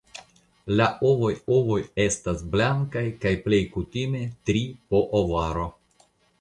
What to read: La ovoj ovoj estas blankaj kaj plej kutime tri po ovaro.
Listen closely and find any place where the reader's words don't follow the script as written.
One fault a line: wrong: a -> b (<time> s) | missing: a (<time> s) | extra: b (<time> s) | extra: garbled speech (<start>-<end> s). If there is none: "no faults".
no faults